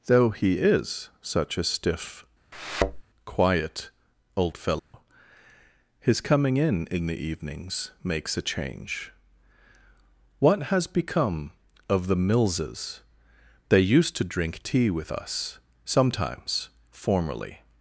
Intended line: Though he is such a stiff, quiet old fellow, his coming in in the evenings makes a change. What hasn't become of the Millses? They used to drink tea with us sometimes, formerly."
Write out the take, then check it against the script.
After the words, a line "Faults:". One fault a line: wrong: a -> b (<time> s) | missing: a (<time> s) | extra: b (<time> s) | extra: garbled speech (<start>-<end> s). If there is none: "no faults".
Though he is such a stiff, quiet old fellow, his coming in in the evenings makes a change. What has become of the Millses? They used to drink tea with us sometimes, formerly."
Faults:
wrong: hasn't -> has (10.6 s)